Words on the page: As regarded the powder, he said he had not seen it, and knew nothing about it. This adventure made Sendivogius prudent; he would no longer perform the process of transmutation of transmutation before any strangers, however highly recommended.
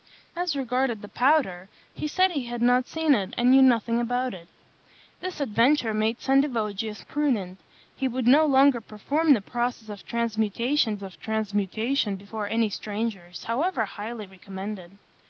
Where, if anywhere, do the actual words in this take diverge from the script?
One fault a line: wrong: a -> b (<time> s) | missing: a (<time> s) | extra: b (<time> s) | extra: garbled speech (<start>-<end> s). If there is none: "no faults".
no faults